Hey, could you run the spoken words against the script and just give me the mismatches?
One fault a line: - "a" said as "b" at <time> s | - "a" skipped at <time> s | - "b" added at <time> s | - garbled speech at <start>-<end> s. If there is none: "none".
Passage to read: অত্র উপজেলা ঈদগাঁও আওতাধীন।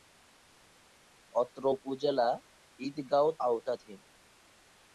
none